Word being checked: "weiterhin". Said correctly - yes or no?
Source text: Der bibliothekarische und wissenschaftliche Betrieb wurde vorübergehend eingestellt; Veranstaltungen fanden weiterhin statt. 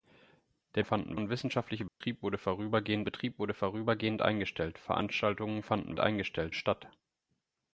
no